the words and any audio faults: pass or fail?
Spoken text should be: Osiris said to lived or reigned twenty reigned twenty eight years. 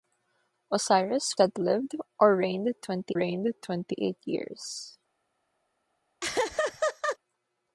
fail